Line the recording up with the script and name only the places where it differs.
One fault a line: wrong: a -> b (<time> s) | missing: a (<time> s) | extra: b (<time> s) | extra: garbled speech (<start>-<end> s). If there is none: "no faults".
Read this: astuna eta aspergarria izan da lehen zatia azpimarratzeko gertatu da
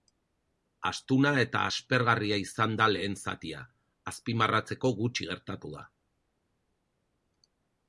extra: gutxi (5.0 s)